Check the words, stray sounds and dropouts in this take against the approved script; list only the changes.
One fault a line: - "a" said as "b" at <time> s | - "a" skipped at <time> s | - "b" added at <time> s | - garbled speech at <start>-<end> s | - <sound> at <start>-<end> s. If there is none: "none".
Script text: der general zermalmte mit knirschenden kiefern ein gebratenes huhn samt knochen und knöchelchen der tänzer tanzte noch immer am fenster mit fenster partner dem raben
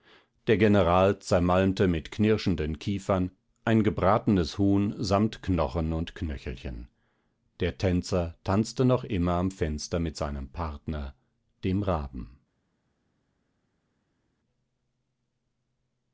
- "fenster" said as "seinem" at 10.2 s